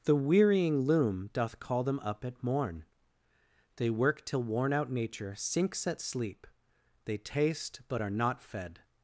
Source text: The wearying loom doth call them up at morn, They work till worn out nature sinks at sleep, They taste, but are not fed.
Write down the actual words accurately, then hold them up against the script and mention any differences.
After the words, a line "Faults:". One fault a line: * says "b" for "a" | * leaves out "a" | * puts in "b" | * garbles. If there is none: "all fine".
The wearying loom doth call them up at morn, They work till worn out nature sinks at sleep, They taste, but are not fed.
Faults:
all fine